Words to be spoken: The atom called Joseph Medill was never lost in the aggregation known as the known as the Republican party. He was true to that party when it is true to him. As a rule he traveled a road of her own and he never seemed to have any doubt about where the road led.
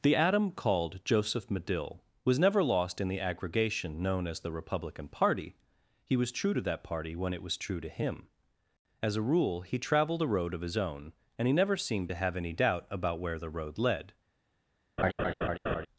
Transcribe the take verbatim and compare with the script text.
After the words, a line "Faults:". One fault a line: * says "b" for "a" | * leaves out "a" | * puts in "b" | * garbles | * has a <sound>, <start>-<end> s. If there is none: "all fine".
The atom called Joseph Medill was never lost in the aggregation known as the Republican party. He was true to that party when it was true to him. As a rule he traveled a road of his own and he never seemed to have any doubt about where the road led.
Faults:
* leaves out "known as the"
* says "was" for "is"
* says "his" for "her"
* has a laugh, 15.0-15.9 s